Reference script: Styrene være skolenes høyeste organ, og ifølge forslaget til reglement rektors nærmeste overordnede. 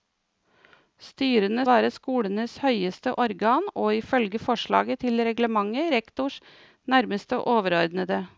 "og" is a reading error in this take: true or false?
false